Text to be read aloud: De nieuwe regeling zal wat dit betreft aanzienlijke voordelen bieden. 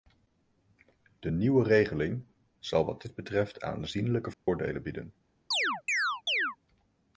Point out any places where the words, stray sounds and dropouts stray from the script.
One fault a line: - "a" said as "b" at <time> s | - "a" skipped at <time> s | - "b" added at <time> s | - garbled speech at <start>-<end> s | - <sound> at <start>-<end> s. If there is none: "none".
- dropout at 4.3-4.5 s
- chirp at 5.5-6.6 s